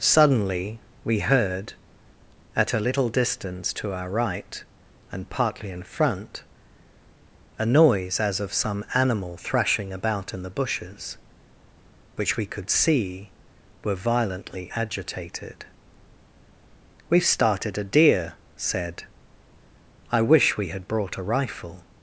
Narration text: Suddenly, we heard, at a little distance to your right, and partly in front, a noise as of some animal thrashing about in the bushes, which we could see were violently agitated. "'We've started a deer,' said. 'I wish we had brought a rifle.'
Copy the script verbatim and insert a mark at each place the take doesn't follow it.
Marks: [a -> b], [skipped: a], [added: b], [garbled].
Suddenly, we heard, at a little distance to [your -> our] right, and partly in front, a noise as of some animal thrashing about in the bushes, which we could see were violently agitated. "'We've started a deer,' said. 'I wish we had brought a rifle.'